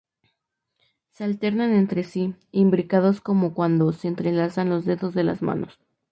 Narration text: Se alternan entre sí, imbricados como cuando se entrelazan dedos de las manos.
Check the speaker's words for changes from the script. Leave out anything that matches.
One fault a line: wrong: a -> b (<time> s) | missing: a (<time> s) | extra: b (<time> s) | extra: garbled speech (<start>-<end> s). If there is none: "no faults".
extra: los (4.7 s)